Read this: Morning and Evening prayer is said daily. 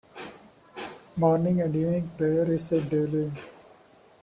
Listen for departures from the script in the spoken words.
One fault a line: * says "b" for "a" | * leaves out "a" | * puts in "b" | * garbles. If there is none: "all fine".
all fine